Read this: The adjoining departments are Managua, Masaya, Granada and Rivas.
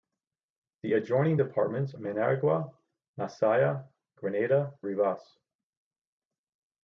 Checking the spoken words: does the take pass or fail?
fail